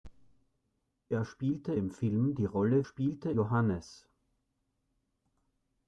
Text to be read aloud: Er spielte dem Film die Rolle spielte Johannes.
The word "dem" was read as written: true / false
true